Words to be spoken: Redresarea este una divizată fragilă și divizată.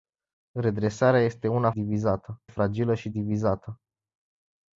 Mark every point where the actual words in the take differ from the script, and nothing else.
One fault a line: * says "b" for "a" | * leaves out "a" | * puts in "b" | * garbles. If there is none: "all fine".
all fine